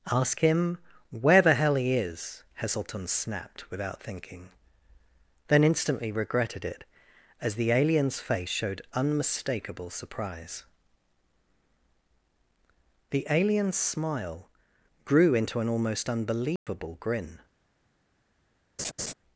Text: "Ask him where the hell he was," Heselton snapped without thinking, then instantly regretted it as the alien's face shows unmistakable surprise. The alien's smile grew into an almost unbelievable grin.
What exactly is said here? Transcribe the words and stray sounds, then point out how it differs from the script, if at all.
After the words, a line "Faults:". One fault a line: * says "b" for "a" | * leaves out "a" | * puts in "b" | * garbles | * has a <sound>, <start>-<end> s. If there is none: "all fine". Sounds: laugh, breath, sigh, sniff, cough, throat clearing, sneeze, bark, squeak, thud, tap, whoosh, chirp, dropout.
"Ask him where the hell he is," Heselton snapped without thinking, then instantly regretted it as the alien's face showed unmistakable surprise. The alien's smile grew into an almost unbelievable grin.
Faults:
* says "is" for "was"
* says "showed" for "shows"
* has a dropout, 16.6-16.7 s
* has a laugh, 18.8-19.1 s